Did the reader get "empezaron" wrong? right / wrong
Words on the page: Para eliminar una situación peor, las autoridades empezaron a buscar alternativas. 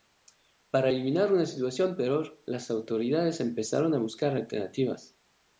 right